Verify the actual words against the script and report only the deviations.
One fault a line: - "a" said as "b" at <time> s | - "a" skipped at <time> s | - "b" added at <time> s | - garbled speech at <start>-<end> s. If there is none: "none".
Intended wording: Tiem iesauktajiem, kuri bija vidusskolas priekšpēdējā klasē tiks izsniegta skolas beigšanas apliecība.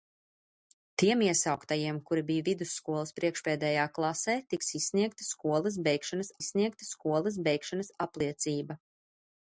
- "izsniegta skolas beigšanas" added at 6.4 s